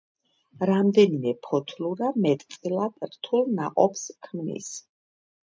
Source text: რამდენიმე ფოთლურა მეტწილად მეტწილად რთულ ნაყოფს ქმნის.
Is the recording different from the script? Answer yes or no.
yes